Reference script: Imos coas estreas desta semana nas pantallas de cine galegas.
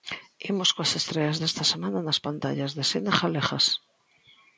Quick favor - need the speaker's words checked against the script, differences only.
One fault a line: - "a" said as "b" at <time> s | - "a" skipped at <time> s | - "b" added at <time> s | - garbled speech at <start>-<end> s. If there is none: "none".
none